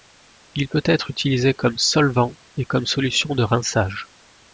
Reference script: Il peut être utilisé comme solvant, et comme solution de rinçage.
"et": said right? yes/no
yes